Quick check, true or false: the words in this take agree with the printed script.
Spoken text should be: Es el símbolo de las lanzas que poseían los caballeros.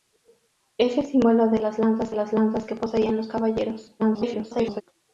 false